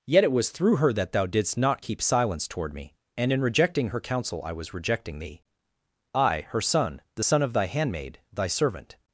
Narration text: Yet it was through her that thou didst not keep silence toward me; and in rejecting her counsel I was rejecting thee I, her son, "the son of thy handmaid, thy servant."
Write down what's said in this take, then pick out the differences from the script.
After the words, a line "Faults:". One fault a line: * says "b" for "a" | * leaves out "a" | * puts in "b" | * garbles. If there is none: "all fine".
Yet it was through her that thou didst not keep silence toward me; and in rejecting her counsel I was rejecting thee I, her son, "the son of thy handmaid, thy servant."
Faults:
all fine